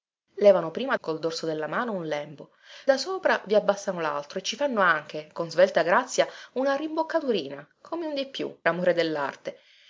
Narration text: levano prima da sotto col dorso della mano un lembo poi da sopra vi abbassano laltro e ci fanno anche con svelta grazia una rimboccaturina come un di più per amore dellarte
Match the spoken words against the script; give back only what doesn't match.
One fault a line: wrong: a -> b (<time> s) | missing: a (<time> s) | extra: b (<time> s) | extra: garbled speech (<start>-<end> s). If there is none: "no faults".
missing: da sotto (0.9 s)
missing: poi (2.5 s)
missing: per (8.5 s)